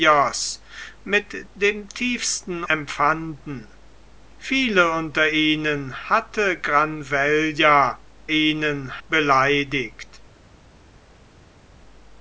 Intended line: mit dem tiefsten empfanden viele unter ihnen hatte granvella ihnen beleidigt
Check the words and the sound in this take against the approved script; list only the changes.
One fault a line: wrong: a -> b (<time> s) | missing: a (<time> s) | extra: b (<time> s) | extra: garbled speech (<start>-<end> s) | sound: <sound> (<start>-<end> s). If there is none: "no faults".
no faults